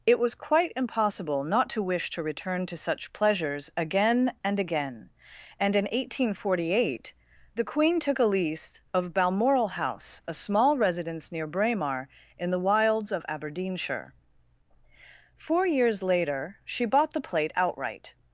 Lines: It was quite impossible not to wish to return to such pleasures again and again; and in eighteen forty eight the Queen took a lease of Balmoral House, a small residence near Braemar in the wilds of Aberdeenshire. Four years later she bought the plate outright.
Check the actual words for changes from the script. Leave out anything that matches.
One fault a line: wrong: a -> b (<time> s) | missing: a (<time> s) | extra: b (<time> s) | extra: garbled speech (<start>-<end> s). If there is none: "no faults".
no faults